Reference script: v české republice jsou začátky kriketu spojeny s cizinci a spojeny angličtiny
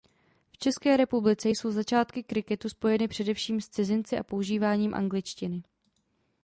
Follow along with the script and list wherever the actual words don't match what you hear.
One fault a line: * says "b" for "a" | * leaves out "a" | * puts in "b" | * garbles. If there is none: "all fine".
* puts in "především"
* says "používáním" for "spojeny"